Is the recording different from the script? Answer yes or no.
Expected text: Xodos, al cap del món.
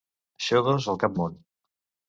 yes